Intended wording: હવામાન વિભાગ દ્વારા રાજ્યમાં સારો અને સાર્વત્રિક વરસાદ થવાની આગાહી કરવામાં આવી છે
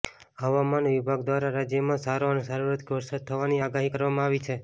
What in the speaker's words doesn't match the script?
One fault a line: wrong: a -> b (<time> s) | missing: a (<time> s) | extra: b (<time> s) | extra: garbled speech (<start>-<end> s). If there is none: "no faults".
no faults